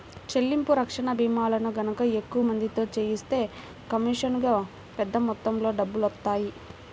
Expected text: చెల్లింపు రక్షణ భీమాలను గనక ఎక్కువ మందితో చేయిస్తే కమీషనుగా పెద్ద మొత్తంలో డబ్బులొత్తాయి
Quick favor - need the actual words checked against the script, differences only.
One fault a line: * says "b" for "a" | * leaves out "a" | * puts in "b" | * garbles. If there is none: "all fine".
all fine